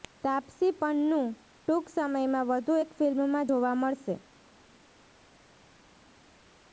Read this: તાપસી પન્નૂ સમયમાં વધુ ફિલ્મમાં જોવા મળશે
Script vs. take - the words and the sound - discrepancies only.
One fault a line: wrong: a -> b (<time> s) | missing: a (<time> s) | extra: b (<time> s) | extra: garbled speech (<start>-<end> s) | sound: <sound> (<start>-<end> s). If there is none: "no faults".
extra: ટૂંક (1.6 s)
extra: એક (2.8 s)